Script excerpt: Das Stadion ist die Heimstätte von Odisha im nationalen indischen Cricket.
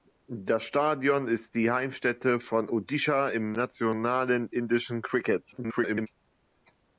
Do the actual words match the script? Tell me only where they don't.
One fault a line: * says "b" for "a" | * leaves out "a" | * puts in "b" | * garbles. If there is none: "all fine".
* garbles